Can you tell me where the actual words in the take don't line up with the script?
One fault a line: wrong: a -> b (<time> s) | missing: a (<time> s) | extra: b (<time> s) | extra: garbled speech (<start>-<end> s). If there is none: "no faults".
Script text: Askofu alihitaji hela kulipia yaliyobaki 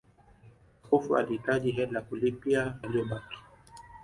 no faults